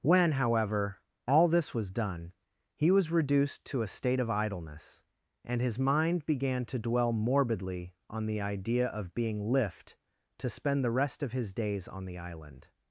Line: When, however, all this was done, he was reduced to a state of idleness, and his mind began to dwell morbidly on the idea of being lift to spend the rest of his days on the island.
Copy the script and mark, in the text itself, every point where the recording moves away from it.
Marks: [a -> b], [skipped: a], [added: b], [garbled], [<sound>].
When, however, all this was done, he was reduced to a state of idleness, and his mind began to dwell morbidly on the idea of being lift to spend the rest of his days on the island.